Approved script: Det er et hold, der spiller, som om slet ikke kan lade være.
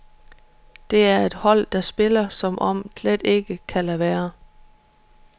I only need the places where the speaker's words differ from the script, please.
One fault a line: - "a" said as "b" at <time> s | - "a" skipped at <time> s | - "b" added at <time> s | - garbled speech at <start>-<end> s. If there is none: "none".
none